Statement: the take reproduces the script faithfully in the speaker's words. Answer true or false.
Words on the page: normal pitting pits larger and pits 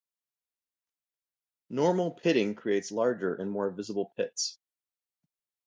false